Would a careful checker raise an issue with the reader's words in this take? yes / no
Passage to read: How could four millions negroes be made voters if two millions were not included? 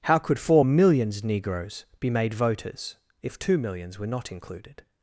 no